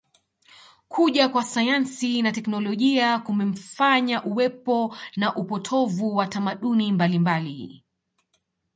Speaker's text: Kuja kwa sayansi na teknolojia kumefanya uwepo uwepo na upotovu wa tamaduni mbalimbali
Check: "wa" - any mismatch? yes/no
no